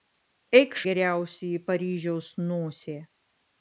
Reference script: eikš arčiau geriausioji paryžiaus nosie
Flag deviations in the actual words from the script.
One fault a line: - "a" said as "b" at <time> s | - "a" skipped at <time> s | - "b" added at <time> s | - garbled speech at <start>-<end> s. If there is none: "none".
- "arčiau" skipped at 0.8 s